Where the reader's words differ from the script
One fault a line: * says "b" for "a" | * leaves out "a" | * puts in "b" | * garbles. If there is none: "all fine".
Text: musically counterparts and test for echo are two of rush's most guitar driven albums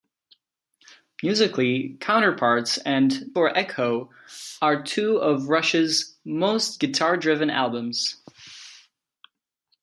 * leaves out "test"